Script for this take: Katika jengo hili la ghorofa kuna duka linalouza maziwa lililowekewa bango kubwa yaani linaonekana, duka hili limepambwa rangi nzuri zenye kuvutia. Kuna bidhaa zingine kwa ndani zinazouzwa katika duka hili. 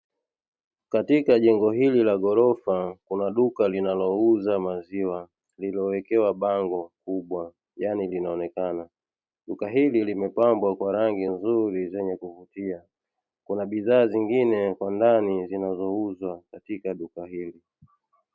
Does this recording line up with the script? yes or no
no